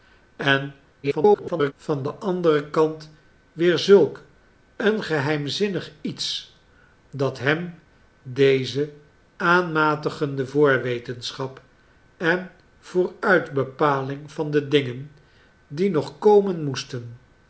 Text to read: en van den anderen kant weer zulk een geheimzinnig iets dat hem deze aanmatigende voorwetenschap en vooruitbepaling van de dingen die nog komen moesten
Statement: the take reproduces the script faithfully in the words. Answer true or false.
false